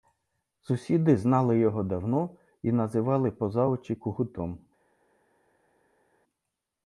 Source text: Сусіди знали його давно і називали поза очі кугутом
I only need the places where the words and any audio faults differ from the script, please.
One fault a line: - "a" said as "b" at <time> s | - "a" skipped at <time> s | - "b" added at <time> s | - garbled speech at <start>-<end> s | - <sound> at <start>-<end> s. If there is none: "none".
none